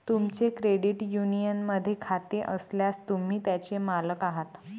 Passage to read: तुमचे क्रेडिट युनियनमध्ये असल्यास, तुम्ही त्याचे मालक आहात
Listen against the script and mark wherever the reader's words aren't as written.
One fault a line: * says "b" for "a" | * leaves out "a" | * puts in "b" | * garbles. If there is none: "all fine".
* puts in "खाते"